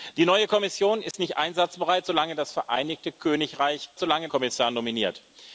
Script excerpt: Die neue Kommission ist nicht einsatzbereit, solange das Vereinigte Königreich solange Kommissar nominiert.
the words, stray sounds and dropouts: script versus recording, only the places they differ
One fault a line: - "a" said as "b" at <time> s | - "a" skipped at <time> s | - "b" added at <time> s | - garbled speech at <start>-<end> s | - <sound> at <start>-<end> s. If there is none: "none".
- dropout at 1.1-1.1 s